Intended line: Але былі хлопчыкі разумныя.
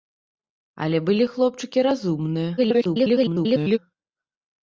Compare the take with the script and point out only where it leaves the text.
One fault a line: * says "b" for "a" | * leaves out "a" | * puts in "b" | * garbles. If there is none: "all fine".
* garbles